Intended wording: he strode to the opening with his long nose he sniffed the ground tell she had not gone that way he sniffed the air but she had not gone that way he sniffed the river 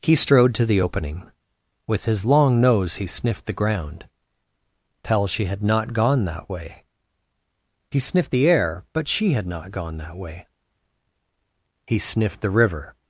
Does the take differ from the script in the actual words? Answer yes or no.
no